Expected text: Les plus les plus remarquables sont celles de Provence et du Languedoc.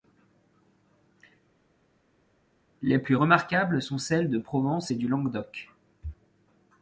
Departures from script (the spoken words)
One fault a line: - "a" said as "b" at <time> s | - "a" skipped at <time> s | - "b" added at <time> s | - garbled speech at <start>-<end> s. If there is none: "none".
- "les plus" skipped at 3.2 s